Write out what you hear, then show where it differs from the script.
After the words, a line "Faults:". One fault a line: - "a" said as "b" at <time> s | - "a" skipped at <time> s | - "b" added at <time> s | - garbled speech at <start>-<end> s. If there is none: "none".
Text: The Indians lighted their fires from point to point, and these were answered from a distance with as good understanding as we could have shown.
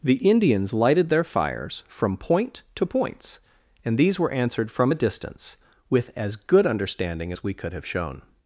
The Indians lighted their fires from point to points, and these were answered from a distance with as good understanding as we could have shown.
Faults:
- "point" said as "points" at 2.9 s